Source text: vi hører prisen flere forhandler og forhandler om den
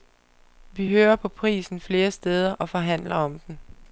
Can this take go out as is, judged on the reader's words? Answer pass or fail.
fail